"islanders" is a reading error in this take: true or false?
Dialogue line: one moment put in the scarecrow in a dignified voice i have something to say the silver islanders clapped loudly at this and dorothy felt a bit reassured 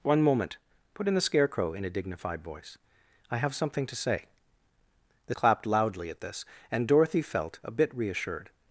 true